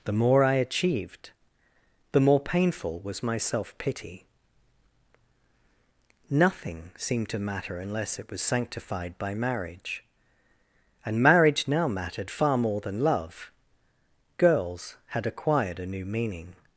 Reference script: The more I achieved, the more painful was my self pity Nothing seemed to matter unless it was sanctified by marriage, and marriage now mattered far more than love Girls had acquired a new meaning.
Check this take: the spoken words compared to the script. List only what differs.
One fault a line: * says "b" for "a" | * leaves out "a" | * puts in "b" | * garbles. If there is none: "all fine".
all fine